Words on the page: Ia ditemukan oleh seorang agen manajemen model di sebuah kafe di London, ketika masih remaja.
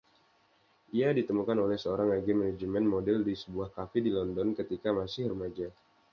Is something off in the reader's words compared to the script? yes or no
no